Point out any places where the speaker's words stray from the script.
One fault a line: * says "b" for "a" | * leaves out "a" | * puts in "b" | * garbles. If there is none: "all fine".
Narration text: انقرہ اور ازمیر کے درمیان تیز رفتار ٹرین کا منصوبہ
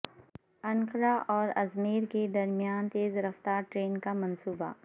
all fine